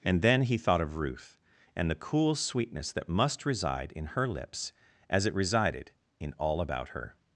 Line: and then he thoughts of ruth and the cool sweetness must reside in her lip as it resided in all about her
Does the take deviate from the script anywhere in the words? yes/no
yes